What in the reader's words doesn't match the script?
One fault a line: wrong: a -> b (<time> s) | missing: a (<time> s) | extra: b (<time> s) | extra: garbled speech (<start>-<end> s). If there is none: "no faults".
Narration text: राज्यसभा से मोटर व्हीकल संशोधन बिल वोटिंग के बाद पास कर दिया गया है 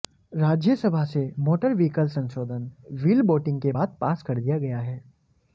no faults